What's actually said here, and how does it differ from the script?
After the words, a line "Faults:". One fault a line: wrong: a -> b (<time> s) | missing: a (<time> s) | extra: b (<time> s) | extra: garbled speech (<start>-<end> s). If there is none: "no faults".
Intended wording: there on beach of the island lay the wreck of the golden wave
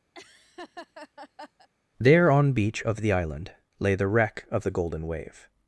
there on beach of the island lay the wreck of the golden wave
Faults:
no faults